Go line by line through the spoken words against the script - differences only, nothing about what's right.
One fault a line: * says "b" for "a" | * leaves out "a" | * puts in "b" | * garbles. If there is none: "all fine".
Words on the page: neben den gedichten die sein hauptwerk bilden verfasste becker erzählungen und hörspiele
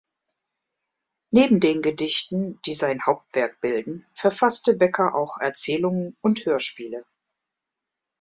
* puts in "auch"